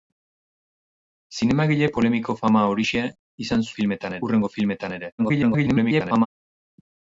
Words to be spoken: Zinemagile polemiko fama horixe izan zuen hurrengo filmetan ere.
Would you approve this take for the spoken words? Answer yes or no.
no